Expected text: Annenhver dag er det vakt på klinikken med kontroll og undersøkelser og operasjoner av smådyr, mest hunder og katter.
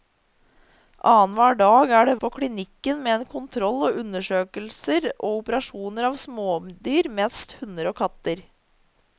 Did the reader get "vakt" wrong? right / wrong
wrong